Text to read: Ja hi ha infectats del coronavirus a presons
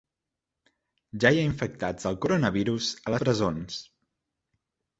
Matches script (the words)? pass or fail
pass